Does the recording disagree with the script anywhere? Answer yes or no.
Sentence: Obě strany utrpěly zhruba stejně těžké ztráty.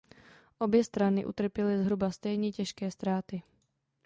no